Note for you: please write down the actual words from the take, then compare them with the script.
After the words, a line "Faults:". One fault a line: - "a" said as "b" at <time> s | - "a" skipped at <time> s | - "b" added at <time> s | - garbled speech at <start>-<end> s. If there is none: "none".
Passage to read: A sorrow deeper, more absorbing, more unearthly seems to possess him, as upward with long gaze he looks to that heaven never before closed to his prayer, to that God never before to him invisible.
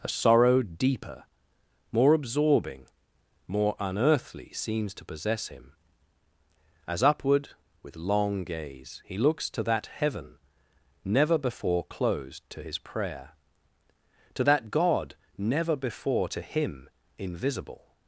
A sorrow deeper, more absorbing, more unearthly seems to possess him, as upward with long gaze he looks to that heaven never before closed to his prayer, to that God never before to him invisible.
Faults:
none